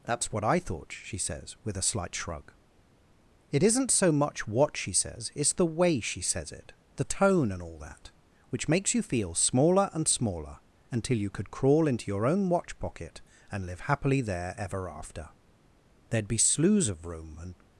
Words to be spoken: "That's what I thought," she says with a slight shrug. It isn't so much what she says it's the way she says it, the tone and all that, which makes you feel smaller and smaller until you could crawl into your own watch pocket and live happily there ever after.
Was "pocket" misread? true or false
false